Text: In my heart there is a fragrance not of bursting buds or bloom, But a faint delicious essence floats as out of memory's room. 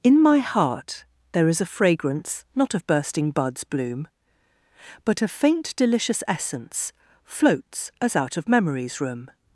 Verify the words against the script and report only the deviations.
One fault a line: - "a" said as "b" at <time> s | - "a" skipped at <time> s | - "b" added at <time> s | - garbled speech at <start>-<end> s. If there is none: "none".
- "or" skipped at 3.6 s